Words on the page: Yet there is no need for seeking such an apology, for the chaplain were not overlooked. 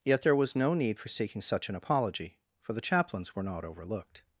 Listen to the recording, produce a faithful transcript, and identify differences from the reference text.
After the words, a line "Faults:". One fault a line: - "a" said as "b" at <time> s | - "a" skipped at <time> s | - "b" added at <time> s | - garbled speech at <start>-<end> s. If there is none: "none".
Yet there was no need for seeking such an apology, for the chaplains were not overlooked.
Faults:
- "is" said as "was" at 0.3 s
- "chaplain" said as "chaplains" at 2.8 s